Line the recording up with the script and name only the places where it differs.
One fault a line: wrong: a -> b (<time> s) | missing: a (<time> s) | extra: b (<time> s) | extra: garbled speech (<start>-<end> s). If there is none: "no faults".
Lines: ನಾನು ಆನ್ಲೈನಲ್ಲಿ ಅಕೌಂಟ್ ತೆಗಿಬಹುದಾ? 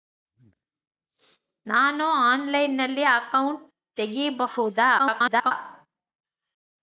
extra: garbled speech (5.0-5.5 s)